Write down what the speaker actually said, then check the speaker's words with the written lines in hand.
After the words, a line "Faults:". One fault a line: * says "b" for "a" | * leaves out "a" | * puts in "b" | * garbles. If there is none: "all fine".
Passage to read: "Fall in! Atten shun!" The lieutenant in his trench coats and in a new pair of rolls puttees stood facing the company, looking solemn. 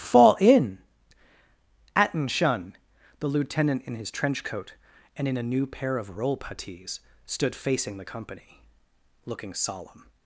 "Fall in! Atten shun!" The lieutenant in his trench coat and in a new pair of roll puttees stood facing the company, looking solemn.
Faults:
* says "coat" for "coats"
* says "roll" for "rolls"